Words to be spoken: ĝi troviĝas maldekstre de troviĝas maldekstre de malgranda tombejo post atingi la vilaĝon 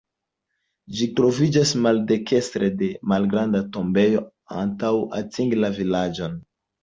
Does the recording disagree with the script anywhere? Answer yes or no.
yes